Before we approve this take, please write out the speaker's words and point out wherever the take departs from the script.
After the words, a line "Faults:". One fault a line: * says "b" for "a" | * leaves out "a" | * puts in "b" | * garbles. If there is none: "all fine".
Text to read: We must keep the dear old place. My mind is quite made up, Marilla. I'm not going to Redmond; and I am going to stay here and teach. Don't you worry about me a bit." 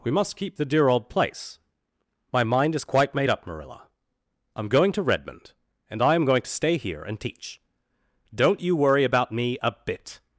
We must keep the dear old place. My mind is quite made up, Marilla. I'm going to Redmond; and I am going to stay here and teach. Don't you worry about me a bit."
Faults:
* leaves out "not"